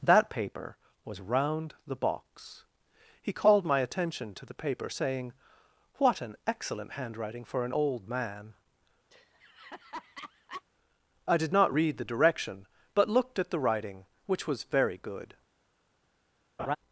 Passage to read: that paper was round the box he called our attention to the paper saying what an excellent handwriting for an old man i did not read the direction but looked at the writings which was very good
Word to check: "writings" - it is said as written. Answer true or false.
false